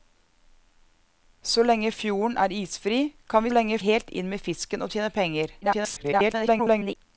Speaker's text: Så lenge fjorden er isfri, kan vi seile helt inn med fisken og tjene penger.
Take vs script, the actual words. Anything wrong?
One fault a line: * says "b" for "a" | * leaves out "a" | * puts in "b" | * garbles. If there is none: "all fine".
* says "lenge" for "seile"
* garbles